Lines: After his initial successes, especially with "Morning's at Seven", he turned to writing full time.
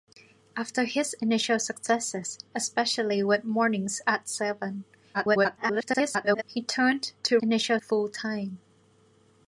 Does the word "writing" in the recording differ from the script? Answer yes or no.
yes